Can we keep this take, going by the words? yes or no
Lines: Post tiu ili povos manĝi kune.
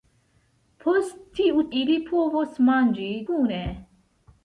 yes